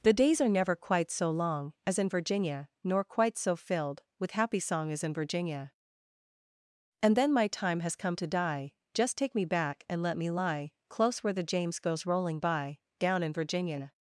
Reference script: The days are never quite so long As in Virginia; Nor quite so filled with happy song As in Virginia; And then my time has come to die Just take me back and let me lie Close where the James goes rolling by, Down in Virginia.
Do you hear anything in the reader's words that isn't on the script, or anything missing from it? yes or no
no